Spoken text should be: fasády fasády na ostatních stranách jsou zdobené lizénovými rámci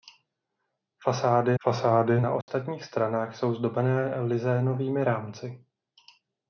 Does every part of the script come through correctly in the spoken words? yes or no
yes